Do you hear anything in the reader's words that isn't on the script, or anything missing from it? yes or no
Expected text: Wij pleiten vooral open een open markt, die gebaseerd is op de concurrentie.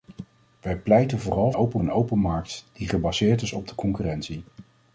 no